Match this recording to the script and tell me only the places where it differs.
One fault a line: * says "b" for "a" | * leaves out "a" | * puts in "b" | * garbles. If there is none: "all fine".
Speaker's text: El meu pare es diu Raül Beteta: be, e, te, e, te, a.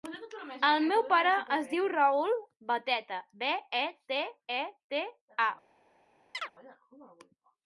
all fine